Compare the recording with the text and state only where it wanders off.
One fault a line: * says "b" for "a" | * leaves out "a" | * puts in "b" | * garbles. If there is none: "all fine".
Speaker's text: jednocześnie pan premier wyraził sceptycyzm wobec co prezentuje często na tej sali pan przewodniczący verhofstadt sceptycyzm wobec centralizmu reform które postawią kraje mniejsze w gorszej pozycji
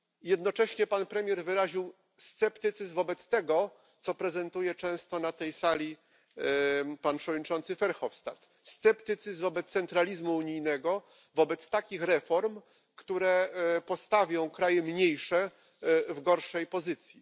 * puts in "tego"
* puts in "unijnego wobec takich"